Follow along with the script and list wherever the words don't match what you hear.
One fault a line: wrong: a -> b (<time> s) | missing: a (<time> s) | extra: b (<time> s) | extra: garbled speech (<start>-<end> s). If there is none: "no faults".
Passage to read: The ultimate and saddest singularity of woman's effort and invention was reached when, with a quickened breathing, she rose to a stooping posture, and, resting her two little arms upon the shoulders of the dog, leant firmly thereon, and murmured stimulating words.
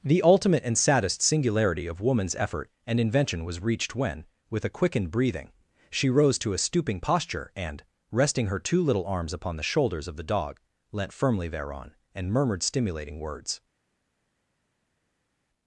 no faults